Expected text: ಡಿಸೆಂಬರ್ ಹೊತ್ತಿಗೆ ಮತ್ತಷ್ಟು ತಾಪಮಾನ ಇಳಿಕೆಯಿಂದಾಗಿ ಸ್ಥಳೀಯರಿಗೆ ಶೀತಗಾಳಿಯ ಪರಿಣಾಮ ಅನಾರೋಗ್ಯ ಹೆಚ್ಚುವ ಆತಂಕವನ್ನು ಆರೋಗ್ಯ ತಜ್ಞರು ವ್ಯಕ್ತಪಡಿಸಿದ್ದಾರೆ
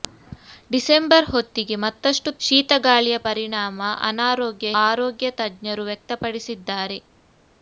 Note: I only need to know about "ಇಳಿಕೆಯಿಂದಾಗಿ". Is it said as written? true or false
false